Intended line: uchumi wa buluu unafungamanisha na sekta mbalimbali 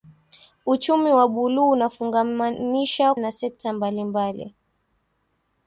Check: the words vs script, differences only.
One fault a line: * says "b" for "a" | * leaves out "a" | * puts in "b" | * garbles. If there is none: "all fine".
all fine